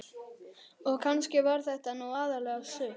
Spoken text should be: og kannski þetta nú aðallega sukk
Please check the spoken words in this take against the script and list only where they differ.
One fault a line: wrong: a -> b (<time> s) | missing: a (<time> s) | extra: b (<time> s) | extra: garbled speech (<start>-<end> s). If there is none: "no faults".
extra: var (1.5 s)